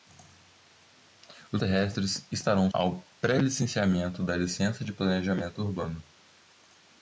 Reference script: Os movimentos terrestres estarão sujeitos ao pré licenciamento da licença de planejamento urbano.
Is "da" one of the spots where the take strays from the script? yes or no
no